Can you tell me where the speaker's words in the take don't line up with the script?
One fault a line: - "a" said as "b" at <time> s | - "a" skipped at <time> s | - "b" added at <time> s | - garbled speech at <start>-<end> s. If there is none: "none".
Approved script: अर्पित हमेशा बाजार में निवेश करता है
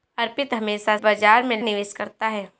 none